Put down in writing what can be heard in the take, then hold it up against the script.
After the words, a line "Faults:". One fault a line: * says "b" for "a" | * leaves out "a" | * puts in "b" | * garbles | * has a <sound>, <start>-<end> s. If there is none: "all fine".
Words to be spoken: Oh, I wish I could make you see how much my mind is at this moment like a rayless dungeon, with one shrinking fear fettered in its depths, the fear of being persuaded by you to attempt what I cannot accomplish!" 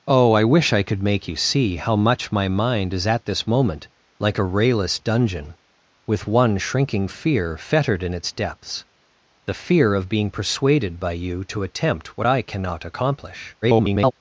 Oh, I wish I could make you see how much my mind is at this moment like a rayless dungeon, with one shrinking fear fettered in its depths, the fear of being persuaded by you to attempt what I cannot accomplish!" [garbled]
Faults:
* garbles